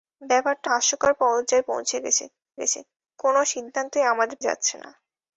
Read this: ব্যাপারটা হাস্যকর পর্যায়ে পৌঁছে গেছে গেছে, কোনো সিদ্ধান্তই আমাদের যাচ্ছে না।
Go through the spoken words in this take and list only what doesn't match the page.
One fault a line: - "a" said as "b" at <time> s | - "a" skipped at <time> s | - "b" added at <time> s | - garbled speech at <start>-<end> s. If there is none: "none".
none